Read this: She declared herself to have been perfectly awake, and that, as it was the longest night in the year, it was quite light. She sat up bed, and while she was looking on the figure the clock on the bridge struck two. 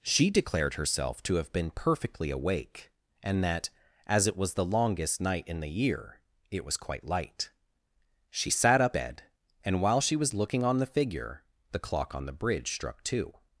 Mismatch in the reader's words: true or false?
false